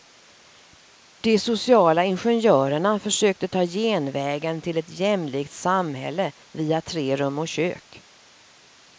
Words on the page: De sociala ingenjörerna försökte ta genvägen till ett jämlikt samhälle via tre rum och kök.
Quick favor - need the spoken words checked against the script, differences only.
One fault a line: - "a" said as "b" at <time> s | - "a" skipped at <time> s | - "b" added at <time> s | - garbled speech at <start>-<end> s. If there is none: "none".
none